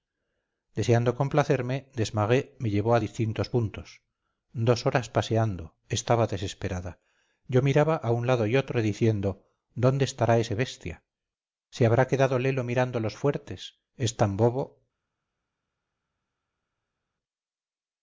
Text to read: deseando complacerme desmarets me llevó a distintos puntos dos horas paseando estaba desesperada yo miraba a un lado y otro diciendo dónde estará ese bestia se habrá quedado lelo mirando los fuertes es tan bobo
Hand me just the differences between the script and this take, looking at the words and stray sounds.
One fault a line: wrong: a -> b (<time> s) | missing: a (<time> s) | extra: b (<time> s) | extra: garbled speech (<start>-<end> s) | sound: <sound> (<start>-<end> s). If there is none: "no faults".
no faults